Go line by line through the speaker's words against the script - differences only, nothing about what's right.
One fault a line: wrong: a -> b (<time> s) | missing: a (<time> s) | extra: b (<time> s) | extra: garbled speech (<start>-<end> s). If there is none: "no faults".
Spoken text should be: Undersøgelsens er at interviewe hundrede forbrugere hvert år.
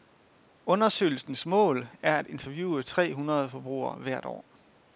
extra: mål (1.4 s)
extra: tre (2.8 s)